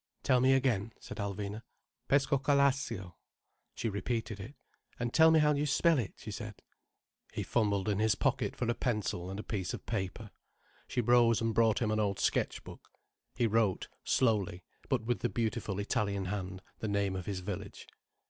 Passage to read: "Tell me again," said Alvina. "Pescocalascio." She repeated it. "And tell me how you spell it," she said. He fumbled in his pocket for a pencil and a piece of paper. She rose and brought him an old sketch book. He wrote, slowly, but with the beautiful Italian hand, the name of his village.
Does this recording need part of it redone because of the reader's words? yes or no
no